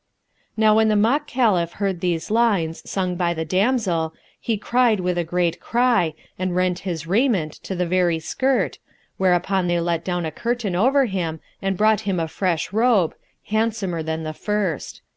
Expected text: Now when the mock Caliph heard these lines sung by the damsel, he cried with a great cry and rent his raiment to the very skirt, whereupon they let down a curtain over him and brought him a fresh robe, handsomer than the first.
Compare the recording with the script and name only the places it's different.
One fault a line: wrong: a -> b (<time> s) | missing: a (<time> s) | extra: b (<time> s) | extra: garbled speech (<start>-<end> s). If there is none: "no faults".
no faults